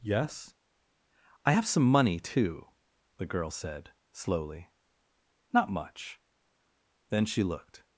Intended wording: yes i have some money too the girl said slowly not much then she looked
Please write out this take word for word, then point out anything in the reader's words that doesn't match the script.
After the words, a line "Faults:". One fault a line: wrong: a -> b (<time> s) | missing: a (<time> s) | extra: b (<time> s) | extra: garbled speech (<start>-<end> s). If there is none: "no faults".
yes i have some money too the girl said slowly not much then she looked
Faults:
no faults